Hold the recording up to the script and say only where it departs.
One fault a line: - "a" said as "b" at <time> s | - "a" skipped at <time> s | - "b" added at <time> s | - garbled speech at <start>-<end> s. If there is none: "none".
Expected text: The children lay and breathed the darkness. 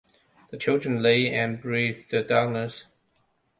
none